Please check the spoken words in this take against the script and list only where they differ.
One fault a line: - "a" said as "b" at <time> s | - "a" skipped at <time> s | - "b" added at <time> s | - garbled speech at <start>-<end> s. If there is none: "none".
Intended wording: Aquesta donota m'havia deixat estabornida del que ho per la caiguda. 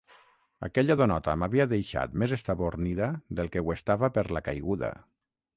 - "Aquesta" said as "Aquella" at 0.7 s
- "més" added at 2.2 s
- "estava" added at 3.8 s